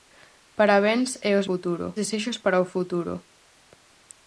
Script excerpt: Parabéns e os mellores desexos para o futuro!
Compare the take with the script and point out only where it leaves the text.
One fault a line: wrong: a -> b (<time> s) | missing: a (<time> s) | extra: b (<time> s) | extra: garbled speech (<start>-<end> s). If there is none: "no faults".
wrong: mellores -> futuro (1.5 s)